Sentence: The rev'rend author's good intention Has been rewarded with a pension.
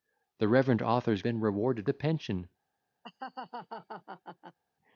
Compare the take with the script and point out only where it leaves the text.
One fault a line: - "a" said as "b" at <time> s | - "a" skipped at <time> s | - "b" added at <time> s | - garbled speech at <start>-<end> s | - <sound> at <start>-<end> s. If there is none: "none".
- "good intention Has" skipped at 1.2 s
- "with" skipped at 1.9 s
- laugh at 3.0-4.6 s